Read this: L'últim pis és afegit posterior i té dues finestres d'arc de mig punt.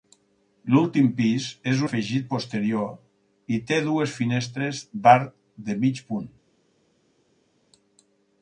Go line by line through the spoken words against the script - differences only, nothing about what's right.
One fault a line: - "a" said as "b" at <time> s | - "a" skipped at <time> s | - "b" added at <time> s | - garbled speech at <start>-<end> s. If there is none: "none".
none